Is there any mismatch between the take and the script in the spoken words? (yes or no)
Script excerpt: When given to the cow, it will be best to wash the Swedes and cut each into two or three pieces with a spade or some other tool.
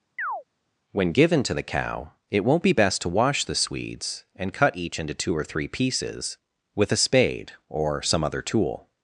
yes